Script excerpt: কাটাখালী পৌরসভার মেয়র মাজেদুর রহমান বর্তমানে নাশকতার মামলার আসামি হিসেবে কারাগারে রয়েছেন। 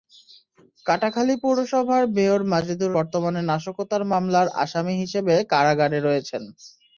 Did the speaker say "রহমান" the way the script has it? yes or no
no